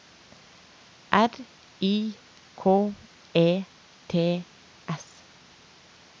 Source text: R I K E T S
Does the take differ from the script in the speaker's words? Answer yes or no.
no